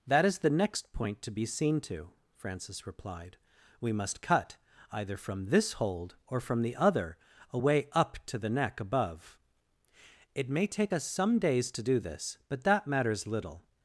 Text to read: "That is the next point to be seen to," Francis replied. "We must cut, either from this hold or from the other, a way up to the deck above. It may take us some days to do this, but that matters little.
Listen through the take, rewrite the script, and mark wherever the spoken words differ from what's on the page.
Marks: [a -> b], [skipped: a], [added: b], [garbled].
"That is the next point to be seen to," Francis replied. "We must cut, either from this hold or from the other, a way up to the [deck -> neck] above. It may take us some days to do this, but that matters little.